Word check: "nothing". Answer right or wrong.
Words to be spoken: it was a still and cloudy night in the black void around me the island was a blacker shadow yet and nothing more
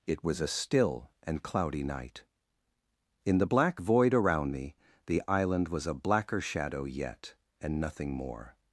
right